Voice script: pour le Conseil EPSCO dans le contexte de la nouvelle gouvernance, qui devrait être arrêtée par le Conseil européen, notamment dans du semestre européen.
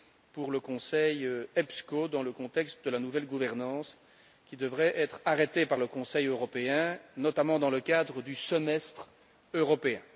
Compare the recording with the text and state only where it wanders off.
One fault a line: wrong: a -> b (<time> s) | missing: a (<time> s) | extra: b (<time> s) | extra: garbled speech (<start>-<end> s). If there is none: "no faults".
extra: le cadre (7.7 s)